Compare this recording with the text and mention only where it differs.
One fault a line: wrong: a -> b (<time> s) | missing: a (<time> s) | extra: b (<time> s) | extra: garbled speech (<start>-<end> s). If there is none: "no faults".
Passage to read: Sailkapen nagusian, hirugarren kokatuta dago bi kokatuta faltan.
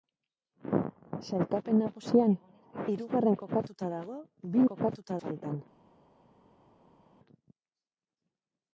no faults